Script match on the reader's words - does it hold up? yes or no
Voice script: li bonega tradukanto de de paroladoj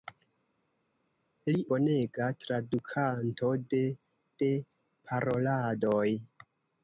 yes